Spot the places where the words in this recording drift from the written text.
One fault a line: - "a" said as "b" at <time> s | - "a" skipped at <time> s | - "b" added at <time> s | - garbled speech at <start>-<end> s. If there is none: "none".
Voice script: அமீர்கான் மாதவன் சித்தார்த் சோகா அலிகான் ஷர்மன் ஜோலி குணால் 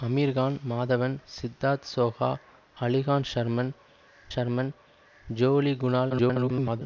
- "ஷர்மன்" added at 4.3 s
- garbled speech at 6.1-6.8 s